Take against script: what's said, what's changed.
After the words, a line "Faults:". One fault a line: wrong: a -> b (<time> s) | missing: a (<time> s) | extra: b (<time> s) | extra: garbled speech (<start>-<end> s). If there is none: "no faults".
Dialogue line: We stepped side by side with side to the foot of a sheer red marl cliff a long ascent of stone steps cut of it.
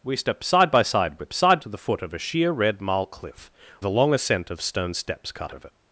We stepped side by side with side to the foot of a sheer red marl cliff a long ascent of stone steps cut of it.
Faults:
no faults